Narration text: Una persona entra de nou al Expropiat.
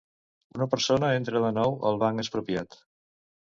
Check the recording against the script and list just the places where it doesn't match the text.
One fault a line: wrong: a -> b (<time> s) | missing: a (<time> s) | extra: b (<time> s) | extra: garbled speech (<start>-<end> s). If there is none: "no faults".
extra: Banc (2.0 s)